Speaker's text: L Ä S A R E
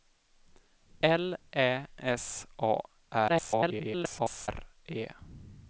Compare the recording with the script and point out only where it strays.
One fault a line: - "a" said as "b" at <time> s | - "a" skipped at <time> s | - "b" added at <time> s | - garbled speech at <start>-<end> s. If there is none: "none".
- garbled speech at 3.3-4.5 s